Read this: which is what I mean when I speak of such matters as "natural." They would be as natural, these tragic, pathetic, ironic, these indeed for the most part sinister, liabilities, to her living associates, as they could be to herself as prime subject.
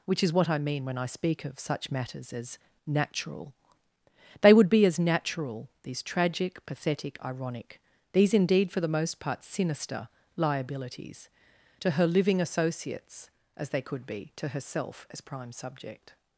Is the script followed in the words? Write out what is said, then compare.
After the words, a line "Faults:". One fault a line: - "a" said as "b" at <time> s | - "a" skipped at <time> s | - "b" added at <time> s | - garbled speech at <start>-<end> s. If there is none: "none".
which is what I mean when I speak of such matters as "natural." They would be as natural, these tragic, pathetic, ironic, these indeed for the most part sinister, liabilities, to her living associates, as they could be to herself as prime subject.
Faults:
none